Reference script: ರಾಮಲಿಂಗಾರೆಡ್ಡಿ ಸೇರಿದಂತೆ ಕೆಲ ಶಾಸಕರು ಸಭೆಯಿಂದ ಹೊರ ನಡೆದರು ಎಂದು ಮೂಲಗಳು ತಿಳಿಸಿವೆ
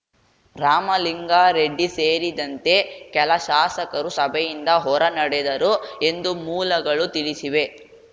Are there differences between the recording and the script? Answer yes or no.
no